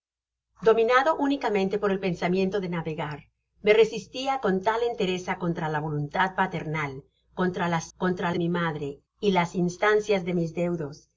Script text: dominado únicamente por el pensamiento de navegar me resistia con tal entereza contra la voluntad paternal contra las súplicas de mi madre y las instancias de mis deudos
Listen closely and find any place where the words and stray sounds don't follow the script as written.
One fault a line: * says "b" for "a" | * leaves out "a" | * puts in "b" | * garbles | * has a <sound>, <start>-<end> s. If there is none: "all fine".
* says "contra" for "súplicas"